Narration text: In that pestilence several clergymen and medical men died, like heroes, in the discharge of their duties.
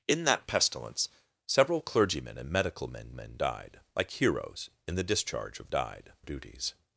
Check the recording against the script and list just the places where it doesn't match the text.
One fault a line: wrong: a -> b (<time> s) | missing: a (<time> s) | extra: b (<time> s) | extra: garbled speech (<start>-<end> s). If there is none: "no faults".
extra: men (3.1 s)
wrong: their -> died (5.7 s)